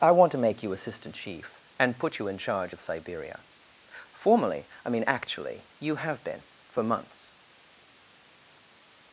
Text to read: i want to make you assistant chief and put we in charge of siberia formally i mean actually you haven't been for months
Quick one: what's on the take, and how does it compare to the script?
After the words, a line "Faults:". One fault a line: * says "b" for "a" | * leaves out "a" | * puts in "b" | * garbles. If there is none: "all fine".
i want to make you assistant chief and put you in charge of siberia formally i mean actually you have been for months
Faults:
* says "you" for "we"
* says "have" for "haven't"